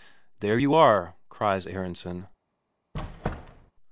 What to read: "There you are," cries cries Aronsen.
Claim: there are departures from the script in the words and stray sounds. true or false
true